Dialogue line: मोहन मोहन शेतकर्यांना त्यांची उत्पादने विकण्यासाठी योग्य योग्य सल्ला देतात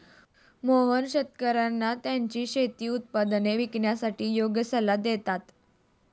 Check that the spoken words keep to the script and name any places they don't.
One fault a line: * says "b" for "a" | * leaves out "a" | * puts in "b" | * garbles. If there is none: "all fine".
* leaves out "मोहन"
* puts in "शेती"
* leaves out "योग्य"